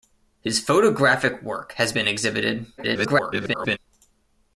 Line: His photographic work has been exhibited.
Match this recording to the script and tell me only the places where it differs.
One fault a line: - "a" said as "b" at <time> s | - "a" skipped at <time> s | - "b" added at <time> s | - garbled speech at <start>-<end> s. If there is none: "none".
- garbled speech at 2.8-3.8 s